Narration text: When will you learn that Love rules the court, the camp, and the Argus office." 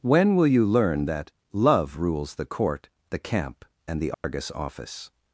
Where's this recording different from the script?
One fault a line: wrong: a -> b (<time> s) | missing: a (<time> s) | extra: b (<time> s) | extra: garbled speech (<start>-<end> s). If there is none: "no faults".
no faults